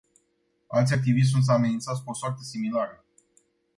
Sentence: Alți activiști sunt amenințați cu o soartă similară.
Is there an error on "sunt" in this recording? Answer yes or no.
no